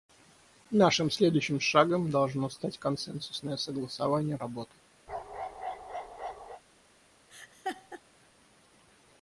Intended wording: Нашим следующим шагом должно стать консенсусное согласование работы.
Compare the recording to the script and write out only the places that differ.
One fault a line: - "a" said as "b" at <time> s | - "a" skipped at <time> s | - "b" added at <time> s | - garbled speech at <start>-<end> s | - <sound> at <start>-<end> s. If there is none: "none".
- bark at 5.1-6.6 s
- laugh at 7.3-8.0 s